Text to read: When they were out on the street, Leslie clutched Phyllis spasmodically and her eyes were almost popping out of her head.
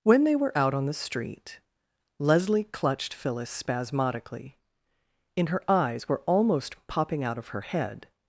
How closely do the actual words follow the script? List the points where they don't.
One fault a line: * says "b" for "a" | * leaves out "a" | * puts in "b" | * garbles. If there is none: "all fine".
* says "in" for "and"